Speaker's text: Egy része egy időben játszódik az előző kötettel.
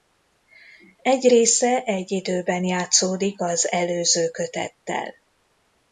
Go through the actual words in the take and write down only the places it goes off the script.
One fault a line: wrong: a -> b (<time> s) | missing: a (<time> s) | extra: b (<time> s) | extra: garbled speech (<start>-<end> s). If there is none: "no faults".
no faults